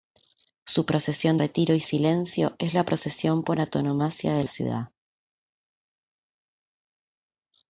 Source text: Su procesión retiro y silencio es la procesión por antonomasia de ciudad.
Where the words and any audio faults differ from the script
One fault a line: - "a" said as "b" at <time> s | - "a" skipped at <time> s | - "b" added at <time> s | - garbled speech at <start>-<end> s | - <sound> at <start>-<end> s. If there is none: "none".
none